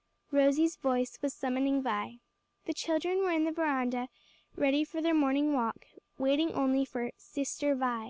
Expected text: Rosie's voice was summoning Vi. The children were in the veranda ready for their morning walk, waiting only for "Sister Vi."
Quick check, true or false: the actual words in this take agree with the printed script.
true